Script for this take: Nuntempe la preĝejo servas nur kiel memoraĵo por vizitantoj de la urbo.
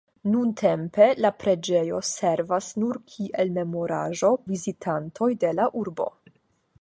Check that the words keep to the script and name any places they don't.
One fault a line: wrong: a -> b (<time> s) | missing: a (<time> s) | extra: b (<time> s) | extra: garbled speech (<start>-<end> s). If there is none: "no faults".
missing: por (4.3 s)